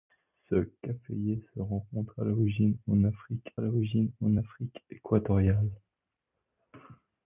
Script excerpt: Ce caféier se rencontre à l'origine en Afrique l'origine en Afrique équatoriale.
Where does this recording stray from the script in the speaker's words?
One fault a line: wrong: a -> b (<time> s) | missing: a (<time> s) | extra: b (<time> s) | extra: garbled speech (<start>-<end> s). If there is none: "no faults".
no faults